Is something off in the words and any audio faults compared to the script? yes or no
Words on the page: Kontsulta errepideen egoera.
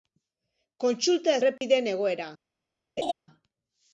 yes